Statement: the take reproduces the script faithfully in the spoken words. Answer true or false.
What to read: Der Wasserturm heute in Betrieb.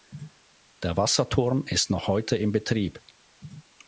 false